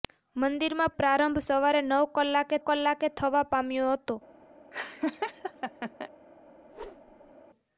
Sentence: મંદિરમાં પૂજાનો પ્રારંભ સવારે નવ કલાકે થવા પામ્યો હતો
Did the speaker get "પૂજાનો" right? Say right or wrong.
wrong